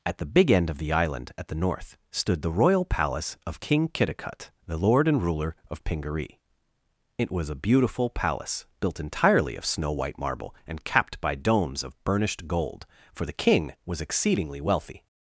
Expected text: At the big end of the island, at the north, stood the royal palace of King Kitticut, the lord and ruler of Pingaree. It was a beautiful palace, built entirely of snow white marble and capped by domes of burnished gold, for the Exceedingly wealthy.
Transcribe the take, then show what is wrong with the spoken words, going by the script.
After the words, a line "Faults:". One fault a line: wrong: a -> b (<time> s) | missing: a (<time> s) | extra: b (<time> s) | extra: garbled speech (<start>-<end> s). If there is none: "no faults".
At the big end of the island, at the north, stood the royal palace of King Kitticut, the lord and ruler of Pingaree. It was a beautiful palace, built entirely of snow white marble and capped by domes of burnished gold, for the King was exceedingly wealthy.
Faults:
extra: King was (13.3 s)